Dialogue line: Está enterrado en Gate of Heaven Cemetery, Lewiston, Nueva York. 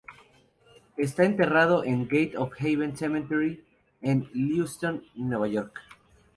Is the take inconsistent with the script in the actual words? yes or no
yes